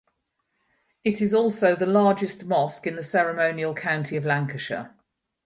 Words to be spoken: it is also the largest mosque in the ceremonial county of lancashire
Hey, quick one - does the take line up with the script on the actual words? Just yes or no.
yes